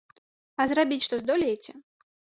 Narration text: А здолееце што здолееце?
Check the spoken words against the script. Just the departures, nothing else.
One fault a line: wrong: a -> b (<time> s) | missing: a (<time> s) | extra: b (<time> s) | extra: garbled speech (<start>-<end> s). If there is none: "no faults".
wrong: здолееце -> зрабіць (0.7 s)